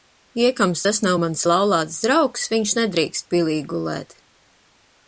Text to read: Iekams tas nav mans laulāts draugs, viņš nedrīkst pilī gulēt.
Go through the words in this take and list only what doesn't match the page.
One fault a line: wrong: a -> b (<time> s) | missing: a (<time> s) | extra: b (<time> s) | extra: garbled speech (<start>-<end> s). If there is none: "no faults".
no faults